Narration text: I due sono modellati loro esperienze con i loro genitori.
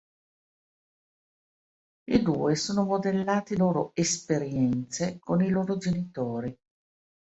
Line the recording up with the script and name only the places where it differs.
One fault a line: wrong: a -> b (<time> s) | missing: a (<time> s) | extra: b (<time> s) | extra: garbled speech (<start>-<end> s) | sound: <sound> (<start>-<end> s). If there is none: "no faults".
no faults